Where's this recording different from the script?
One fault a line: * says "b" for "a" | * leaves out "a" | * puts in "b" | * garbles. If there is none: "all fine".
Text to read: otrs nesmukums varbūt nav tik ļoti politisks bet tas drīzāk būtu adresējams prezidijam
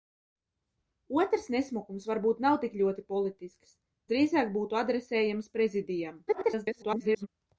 * leaves out "bet tas"
* garbles